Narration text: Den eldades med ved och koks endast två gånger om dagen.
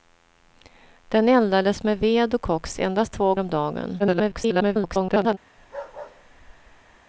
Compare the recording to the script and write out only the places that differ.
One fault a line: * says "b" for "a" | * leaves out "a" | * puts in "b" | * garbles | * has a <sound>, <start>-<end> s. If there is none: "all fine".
* leaves out "gånger"
* garbles
* has a bark, 5.6-7.0 s